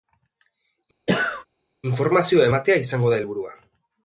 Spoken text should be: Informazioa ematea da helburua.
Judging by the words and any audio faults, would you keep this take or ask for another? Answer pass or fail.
fail